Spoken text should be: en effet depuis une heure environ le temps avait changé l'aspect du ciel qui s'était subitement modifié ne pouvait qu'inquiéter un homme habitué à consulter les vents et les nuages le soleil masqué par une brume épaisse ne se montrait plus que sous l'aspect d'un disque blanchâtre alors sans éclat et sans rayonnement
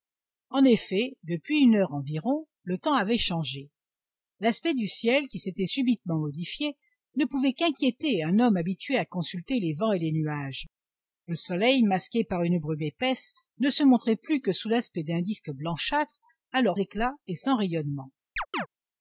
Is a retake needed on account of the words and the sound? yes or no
yes